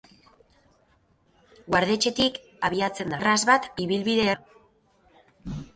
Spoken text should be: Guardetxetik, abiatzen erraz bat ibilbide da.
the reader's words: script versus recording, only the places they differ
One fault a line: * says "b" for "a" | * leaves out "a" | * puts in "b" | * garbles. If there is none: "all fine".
all fine